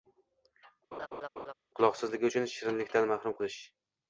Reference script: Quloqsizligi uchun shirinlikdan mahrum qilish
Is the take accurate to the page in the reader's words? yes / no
yes